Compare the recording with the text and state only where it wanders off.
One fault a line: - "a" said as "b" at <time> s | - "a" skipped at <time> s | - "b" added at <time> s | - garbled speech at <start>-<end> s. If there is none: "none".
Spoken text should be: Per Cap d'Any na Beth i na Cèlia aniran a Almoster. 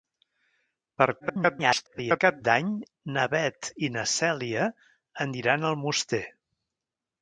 - garbled speech at 1.2-2.2 s